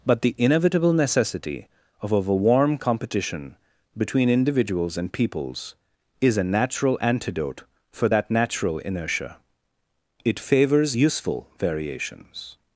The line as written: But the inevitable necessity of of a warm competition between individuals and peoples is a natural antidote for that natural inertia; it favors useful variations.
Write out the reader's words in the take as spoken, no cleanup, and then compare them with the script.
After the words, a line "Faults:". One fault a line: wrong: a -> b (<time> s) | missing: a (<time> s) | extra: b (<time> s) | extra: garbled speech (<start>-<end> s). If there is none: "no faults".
But the inevitable necessity of of a warm competition between individuals and peoples is a natural antidote for that natural inertia; it favors useful variations.
Faults:
no faults